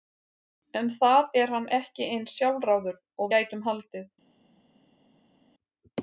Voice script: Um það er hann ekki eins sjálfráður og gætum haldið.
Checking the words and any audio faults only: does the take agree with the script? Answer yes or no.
yes